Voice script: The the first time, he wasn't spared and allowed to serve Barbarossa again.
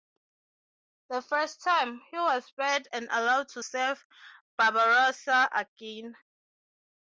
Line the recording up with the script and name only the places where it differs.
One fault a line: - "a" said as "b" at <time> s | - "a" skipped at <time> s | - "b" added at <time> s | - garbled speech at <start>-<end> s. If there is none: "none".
- "the" skipped at 1.2 s
- "wasn't" said as "was" at 2.2 s